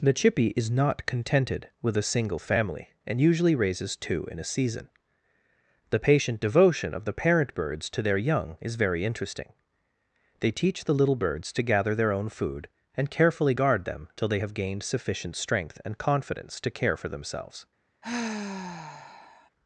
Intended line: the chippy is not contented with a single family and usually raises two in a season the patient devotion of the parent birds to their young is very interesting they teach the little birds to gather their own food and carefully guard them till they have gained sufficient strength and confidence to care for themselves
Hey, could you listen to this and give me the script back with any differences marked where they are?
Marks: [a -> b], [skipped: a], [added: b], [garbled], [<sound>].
the chippy is not contented with a single family and usually raises two in a season the patient devotion of the parent birds to their young is very interesting they teach the little birds to gather their own food and carefully guard them till they have gained sufficient strength and confidence to care for themselves [sigh]